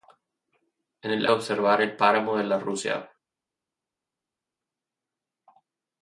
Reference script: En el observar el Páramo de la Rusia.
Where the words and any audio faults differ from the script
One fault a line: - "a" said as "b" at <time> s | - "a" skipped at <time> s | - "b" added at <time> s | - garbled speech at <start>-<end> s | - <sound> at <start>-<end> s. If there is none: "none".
none